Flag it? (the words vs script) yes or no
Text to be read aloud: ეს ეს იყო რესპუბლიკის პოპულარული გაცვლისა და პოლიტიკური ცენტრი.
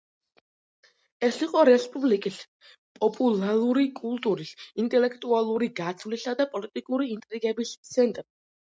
yes